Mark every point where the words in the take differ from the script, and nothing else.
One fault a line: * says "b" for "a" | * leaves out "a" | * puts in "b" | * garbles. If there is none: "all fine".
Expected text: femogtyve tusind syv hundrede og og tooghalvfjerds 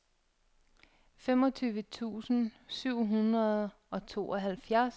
* leaves out "og"